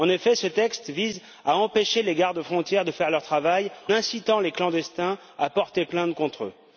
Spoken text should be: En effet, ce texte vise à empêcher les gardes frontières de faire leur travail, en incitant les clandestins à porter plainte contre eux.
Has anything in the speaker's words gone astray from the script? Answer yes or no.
yes